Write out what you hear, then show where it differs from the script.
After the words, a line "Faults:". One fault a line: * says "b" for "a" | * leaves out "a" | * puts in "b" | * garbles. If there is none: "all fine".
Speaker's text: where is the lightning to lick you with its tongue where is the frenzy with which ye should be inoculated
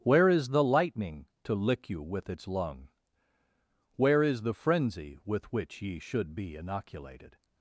where is the lightning to lick you with its lung where is the frenzy with which ye should be inoculated
Faults:
* says "lung" for "tongue"